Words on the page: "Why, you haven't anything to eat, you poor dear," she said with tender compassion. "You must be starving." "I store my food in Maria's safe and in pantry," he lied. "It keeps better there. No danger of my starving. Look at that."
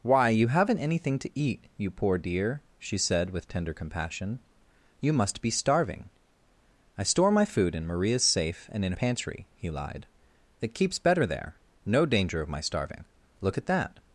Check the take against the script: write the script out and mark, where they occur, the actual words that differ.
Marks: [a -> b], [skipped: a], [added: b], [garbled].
"Why, you haven't anything to eat, you poor dear," she said with tender compassion. "You must be starving." "I store my food in Maria's safe and in pantry," he lied. "It keeps better there. No danger of my starving. Look at that."